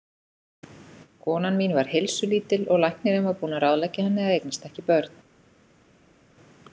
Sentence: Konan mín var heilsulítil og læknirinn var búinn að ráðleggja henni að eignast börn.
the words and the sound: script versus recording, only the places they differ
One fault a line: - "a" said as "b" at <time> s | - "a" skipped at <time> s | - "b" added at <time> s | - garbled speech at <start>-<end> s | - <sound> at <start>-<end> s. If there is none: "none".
- "ekki" added at 4.7 s